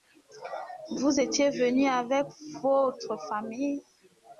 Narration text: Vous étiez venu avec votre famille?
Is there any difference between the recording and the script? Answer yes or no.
no